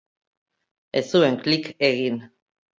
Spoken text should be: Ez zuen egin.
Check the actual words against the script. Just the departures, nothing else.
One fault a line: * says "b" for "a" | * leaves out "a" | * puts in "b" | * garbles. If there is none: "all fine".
* puts in "klik"